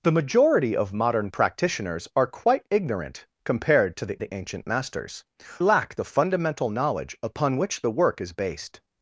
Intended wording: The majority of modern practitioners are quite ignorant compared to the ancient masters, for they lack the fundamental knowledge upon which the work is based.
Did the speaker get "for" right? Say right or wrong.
wrong